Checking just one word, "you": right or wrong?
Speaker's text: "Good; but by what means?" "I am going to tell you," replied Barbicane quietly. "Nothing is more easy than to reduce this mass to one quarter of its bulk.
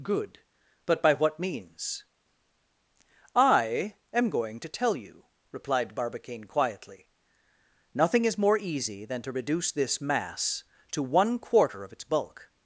right